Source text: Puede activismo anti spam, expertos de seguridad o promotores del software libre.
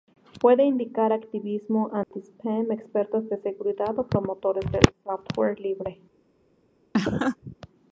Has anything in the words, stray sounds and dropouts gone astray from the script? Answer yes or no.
yes